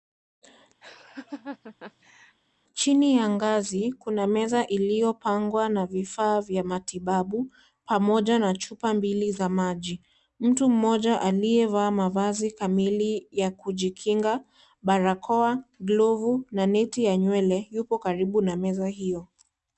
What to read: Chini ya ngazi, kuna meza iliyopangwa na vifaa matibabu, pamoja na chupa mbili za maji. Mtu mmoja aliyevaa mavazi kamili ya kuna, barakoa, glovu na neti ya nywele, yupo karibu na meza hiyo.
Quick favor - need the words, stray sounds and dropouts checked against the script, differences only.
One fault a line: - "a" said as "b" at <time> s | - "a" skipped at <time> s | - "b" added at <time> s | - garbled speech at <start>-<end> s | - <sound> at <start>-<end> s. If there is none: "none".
- laugh at 0.8-2.4 s
- "vya" added at 6.4 s
- "kuna" said as "kujikinga" at 13.5 s